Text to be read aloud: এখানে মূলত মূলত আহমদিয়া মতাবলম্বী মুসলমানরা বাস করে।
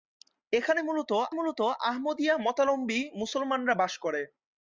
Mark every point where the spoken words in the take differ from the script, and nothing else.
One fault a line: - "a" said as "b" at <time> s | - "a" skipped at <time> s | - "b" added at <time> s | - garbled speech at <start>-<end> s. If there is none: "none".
none